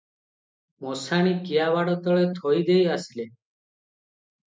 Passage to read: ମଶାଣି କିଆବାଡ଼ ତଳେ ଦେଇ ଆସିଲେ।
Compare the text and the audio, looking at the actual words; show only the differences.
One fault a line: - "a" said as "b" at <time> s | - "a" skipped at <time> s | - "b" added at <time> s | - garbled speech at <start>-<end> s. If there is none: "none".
- "ଥୋଇ" added at 2.3 s